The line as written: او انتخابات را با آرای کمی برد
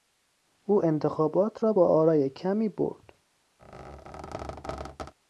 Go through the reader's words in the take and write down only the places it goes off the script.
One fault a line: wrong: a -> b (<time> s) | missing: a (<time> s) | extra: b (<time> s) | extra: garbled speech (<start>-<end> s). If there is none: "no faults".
no faults